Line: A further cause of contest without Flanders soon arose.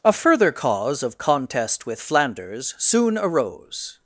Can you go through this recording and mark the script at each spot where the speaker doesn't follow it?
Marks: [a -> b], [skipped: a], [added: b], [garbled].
A further cause of contest [without -> with] Flanders soon arose.